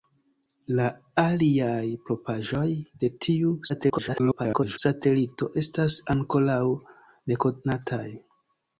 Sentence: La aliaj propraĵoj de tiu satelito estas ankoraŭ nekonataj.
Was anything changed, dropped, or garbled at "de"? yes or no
no